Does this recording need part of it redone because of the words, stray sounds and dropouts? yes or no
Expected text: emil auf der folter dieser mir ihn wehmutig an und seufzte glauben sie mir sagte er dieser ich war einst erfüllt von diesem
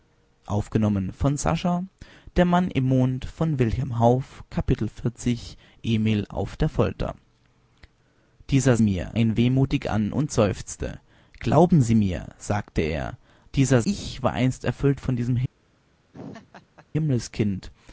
yes